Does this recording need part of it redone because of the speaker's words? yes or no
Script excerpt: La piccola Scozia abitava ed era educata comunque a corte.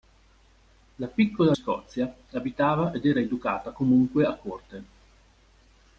no